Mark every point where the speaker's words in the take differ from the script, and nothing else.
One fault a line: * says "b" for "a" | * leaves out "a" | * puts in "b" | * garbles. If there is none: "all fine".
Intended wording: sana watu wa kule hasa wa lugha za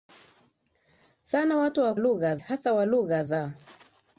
* says "lugha" for "kule"